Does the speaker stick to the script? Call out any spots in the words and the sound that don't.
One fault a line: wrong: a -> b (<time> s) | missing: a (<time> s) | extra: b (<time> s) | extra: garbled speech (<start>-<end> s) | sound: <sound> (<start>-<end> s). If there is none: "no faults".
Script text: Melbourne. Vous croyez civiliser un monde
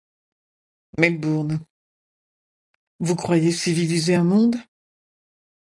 no faults